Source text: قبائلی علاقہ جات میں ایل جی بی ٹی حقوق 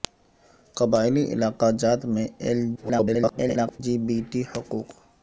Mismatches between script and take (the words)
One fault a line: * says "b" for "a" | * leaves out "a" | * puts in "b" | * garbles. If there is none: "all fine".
* garbles